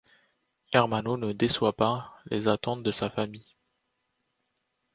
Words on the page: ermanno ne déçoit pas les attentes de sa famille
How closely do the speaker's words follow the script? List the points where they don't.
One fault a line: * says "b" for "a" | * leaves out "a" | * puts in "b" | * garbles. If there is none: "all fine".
all fine